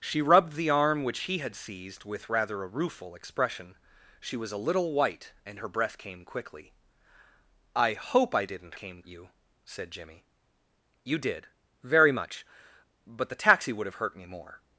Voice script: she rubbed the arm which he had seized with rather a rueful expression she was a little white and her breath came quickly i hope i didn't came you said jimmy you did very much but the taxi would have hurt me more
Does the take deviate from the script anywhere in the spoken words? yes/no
no